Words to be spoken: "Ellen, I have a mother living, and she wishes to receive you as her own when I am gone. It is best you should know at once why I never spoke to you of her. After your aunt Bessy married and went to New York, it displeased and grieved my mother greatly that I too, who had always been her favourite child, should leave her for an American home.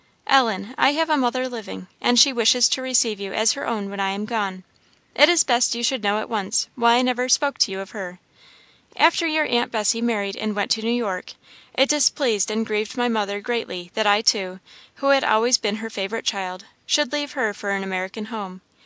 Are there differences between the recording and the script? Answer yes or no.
no